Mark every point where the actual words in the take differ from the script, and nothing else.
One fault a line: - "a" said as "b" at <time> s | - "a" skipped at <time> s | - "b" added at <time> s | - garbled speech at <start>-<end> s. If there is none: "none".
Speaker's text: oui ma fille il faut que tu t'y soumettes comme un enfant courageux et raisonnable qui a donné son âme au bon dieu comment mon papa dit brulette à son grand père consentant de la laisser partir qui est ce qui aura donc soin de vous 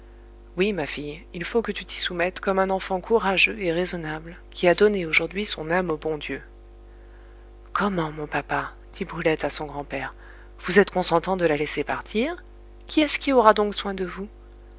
- "aujourd'hui" added at 5.0 s
- "vous êtes" added at 10.6 s